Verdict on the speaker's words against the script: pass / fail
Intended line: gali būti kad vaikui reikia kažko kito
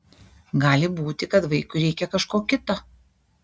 pass